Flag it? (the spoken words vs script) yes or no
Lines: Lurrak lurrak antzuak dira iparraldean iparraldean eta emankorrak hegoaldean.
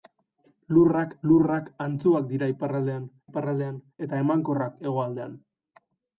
no